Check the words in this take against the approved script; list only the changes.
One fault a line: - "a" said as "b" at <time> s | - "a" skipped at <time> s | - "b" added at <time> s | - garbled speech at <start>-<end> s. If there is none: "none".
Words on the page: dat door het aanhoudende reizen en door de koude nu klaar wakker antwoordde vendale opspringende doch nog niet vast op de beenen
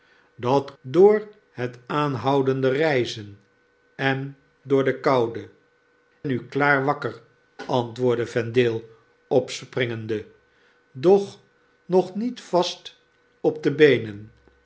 none